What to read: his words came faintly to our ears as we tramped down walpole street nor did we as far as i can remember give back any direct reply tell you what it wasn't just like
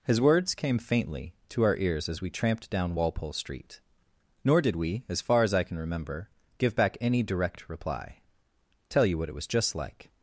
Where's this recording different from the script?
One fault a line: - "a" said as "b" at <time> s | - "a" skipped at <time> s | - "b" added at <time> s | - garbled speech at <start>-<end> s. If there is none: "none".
- "wasn't" said as "was" at 9.3 s